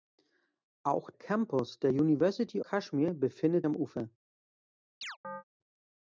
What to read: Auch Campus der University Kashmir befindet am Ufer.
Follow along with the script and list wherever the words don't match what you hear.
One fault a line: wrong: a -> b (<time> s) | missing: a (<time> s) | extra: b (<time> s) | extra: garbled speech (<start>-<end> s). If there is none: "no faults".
no faults